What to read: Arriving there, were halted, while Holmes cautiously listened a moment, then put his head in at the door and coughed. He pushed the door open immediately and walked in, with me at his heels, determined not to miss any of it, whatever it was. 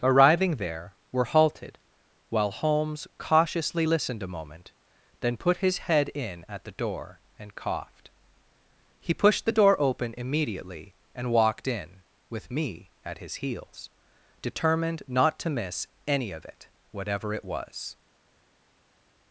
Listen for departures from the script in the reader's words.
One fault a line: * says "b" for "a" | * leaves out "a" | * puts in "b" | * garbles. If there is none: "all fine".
all fine